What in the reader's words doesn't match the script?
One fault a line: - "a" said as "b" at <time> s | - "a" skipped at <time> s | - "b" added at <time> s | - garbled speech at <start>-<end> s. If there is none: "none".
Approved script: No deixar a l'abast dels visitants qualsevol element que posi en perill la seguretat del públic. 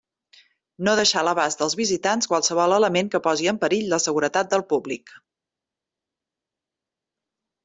none